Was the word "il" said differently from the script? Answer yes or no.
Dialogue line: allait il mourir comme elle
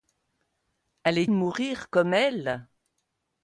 yes